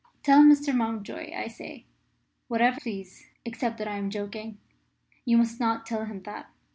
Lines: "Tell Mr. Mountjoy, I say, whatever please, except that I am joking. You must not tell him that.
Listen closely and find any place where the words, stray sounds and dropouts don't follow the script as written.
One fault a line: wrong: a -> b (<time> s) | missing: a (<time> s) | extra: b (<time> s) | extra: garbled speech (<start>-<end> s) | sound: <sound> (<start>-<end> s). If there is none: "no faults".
no faults